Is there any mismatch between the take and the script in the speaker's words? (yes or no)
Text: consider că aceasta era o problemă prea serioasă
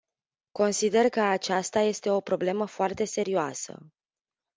yes